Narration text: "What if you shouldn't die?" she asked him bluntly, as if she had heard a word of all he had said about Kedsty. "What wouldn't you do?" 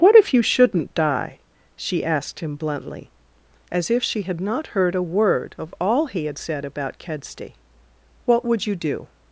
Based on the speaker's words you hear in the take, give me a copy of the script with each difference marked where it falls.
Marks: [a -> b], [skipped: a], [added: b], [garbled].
"What if you shouldn't die?" she asked him bluntly, as if she had [added: not] heard a word of all he had said about Kedsty. "What [wouldn't -> would] you do?"